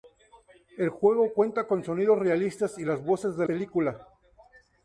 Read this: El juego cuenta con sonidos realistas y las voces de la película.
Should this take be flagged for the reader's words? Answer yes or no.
yes